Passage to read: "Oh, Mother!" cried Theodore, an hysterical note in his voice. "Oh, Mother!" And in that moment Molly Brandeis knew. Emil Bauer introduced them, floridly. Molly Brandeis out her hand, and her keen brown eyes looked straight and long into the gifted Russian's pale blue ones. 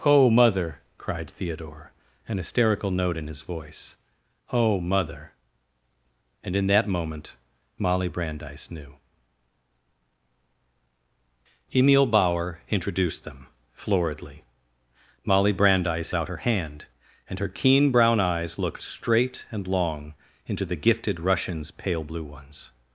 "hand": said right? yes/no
yes